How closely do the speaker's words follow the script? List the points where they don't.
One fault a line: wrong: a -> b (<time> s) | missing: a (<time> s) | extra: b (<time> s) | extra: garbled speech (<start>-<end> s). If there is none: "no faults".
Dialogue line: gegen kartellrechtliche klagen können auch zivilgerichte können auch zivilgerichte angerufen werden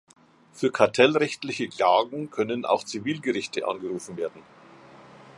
wrong: gegen -> für (0.5 s)
missing: können auch zivilgerichte (3.7 s)